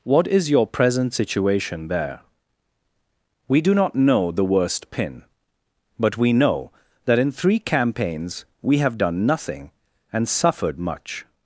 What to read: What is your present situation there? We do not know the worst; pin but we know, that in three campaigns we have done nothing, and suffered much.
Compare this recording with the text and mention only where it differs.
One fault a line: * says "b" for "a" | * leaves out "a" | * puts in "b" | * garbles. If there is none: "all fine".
all fine